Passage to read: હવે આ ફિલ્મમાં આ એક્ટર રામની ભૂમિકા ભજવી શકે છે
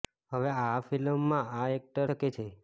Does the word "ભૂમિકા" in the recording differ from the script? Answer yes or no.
yes